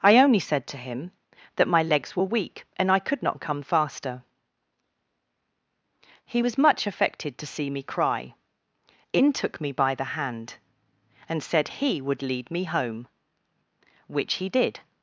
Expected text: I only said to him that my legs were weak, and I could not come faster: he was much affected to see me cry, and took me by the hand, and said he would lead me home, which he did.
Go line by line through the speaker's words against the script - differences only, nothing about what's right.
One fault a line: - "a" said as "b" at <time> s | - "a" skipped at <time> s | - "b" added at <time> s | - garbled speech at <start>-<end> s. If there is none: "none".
- "and" said as "in" at 9.1 s